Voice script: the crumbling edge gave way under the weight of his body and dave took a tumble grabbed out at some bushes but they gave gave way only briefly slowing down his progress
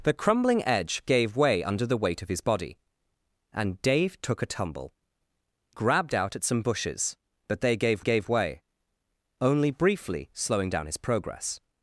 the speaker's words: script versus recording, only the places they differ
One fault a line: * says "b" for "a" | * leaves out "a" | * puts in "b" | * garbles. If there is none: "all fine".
all fine